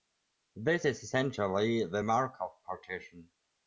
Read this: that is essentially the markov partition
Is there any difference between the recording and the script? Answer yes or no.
yes